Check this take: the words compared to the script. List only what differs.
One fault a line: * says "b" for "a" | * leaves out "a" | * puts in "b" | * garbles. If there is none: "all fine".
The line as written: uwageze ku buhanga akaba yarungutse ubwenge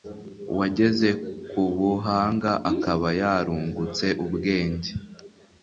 all fine